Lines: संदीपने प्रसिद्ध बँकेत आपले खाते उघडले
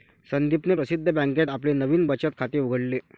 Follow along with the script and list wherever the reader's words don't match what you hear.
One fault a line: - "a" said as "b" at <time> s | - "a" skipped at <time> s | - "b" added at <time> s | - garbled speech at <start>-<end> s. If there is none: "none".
- "नवीन बचत" added at 1.7 s